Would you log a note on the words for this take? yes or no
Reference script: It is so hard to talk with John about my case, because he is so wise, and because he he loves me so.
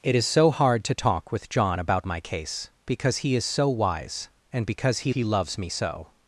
no